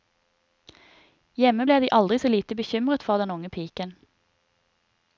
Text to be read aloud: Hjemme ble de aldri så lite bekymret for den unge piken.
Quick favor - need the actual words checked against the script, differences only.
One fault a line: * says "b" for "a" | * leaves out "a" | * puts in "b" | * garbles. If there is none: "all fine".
all fine